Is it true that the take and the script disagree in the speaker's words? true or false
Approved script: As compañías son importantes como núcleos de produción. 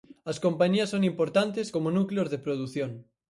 false